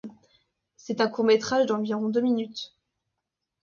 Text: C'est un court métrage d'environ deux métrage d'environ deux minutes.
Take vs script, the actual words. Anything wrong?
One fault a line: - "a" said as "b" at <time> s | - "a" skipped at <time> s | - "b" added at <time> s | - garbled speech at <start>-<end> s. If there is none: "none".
- "métrage d'environ deux" skipped at 2.2 s